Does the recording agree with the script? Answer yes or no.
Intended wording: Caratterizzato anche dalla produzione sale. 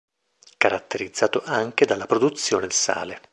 yes